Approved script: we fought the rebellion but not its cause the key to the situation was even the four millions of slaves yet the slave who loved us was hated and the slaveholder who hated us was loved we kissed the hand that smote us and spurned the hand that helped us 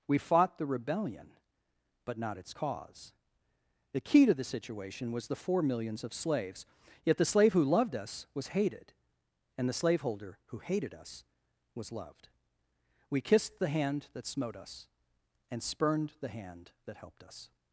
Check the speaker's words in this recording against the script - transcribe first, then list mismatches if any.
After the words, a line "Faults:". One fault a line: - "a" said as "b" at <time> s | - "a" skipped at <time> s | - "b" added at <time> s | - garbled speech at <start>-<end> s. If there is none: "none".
we fought the rebellion but not its cause the key to the situation was the four millions of slaves yet the slave who loved us was hated and the slaveholder who hated us was loved we kissed the hand that smote us and spurned the hand that helped us
Faults:
- "even" skipped at 5.3 s